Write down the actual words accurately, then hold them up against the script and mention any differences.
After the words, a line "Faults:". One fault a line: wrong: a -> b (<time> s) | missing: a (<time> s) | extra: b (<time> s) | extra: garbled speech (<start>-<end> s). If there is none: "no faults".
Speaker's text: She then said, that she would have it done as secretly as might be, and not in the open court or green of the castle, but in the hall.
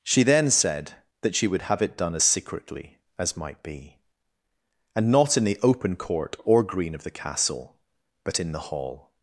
She then said, that she would have it done as secretly as might be, and not in the open court or green of the castle, but in the hall.
Faults:
no faults